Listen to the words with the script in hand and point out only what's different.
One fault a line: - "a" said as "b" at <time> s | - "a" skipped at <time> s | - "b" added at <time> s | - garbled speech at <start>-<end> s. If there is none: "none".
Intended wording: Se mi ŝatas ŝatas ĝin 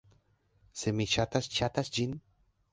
none